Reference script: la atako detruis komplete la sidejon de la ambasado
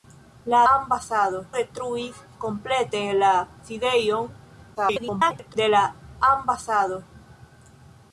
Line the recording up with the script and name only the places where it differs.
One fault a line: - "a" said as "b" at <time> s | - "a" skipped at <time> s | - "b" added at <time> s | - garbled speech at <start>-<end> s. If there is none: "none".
- "atako" said as "ambasado" at 0.7 s
- garbled speech at 4.7-5.6 s